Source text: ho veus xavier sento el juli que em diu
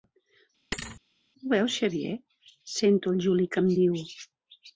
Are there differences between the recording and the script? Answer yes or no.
no